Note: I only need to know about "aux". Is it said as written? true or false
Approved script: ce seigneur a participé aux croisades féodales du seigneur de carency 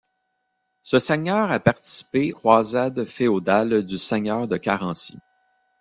false